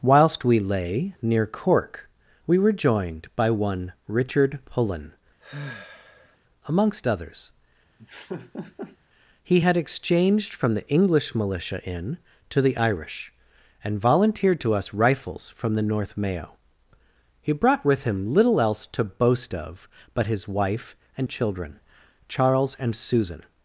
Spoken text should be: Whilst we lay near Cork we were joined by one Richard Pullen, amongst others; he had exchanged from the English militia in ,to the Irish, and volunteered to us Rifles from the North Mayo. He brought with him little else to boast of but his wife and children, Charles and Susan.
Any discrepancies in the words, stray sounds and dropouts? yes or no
yes